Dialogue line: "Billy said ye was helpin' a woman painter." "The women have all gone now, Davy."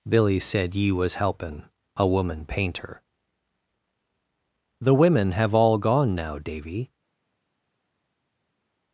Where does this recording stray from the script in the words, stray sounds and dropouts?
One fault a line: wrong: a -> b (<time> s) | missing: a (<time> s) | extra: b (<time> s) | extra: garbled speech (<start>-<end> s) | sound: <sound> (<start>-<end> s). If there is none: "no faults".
no faults